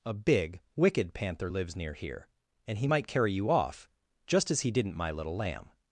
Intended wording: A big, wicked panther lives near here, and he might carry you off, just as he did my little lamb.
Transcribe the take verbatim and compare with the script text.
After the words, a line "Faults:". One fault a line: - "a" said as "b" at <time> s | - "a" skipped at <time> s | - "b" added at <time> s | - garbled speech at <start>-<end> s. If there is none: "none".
A big, wicked panther lives near here, and he might carry you off, just as he didn't my little lamb.
Faults:
- "did" said as "didn't" at 4.7 s